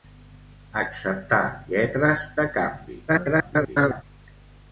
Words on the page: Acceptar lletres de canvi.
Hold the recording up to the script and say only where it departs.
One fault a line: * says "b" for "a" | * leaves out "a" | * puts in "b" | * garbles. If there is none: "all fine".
* garbles